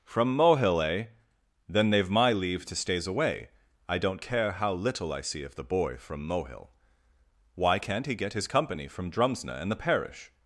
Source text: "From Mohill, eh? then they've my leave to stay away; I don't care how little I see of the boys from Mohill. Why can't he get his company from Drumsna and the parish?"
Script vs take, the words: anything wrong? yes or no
yes